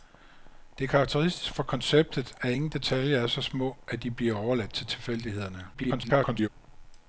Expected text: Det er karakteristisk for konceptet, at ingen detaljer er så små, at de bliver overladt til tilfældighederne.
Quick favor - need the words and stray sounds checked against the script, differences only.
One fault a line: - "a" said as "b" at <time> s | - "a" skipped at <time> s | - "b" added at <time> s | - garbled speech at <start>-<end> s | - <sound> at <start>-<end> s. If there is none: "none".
- garbled speech at 5.7-6.5 s